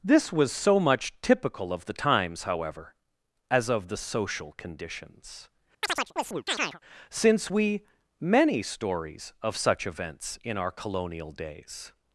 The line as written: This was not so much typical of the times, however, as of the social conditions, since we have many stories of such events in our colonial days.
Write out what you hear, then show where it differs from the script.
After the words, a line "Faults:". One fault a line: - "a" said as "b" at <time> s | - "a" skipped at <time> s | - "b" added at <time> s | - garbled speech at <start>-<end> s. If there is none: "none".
This was so much typical of the times, however, as of the social conditions, since we many stories of such events in our colonial days.
Faults:
- "not" skipped at 0.5 s
- "have" skipped at 7.8 s